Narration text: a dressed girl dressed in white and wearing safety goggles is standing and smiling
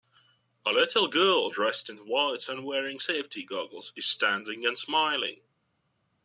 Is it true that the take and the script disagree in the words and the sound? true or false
true